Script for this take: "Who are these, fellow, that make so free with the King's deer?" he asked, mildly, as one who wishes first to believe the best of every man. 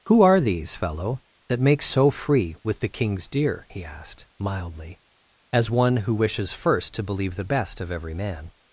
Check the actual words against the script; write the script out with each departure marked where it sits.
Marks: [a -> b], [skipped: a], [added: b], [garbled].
"Who are these, fellow, that make so free with the King's deer?" he asked, mildly, as one who wishes first to believe the best of every man.